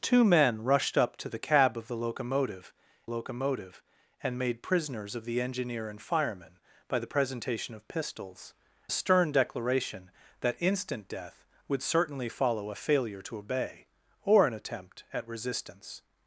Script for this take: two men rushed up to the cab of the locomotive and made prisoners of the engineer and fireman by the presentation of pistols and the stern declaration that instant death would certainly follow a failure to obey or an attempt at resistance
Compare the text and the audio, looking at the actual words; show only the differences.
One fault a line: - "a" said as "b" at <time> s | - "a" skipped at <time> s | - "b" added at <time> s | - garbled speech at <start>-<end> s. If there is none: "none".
- "locomotive" added at 3.0 s
- "and" skipped at 8.5 s